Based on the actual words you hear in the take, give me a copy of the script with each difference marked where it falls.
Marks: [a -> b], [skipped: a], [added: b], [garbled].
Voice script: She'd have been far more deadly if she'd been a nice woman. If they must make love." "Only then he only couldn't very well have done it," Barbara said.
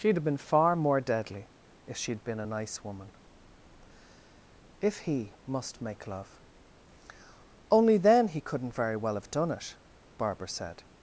She'd have been far more deadly if she'd been a nice woman. If [they -> he] must make love." "Only then he [skipped: only] couldn't very well have done it," Barbara said.